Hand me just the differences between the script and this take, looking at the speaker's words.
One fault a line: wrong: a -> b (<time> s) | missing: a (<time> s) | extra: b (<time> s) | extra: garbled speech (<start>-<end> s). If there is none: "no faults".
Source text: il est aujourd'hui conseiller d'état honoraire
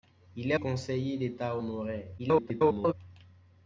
missing: aujourd'hui (0.6 s)
extra: garbled speech (2.2-2.9 s)